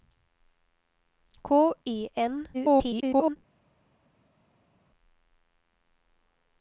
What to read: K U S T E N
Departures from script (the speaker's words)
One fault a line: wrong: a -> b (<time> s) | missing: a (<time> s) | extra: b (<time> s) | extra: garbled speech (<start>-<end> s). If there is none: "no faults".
missing: U S T (1.7 s)
extra: garbled speech (2.5-3.4 s)